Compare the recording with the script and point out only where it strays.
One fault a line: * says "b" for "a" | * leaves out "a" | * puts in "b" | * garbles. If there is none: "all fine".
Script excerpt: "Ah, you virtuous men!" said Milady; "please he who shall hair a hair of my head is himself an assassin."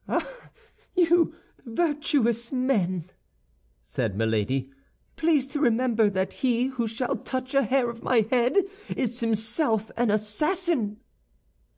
* puts in "to remember that"
* says "touch" for "hair"